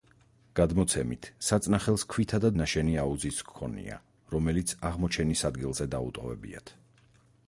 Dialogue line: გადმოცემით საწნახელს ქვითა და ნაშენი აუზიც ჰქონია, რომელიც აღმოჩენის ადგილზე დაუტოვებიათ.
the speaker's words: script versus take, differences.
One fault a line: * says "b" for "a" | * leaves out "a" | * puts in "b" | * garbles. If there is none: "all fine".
all fine